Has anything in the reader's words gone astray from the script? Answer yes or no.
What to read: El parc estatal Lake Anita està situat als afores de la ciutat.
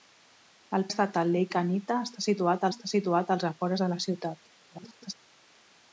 yes